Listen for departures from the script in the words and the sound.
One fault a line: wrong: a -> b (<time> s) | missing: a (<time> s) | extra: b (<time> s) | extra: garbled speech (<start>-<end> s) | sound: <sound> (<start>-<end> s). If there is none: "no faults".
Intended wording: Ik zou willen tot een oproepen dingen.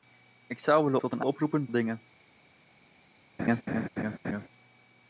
sound: laugh (3.4-4.5 s)